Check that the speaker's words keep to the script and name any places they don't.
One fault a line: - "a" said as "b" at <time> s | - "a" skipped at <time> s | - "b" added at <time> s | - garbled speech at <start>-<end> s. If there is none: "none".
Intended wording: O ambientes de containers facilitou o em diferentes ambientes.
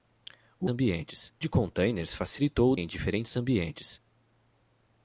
none